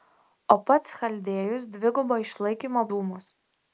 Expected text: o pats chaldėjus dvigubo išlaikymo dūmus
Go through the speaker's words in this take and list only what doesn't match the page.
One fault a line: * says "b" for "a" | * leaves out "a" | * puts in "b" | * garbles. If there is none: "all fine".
all fine